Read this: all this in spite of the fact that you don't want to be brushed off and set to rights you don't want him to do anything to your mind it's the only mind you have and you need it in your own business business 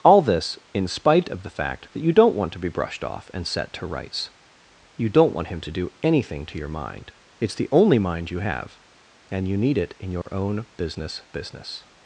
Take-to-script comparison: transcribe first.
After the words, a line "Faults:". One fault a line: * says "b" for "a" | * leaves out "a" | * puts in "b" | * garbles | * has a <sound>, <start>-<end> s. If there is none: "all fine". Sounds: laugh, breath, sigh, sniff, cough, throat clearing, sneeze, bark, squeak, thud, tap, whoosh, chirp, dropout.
all this in spite of the fact that you don't want to be brushed off and set to rights you don't want him to do anything to your mind it's the only mind you have and you need it in your own business business
Faults:
* has a dropout, 10.2-10.3 s